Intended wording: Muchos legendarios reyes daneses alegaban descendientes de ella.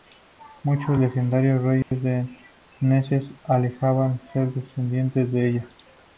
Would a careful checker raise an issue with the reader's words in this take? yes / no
yes